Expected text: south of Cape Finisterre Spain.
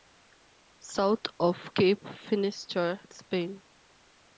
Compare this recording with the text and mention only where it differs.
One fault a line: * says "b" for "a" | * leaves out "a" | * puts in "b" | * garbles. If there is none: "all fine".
all fine